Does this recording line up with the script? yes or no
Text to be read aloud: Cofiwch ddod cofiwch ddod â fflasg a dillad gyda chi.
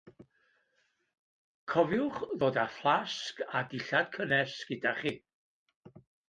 no